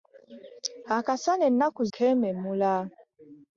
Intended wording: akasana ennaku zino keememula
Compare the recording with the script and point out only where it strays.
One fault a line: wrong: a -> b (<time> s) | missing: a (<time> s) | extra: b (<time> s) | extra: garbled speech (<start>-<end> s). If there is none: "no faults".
missing: zino (1.8 s)